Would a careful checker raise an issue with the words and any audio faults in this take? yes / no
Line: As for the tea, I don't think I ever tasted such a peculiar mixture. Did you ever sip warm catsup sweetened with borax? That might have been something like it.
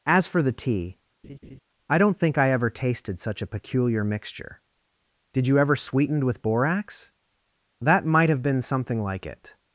yes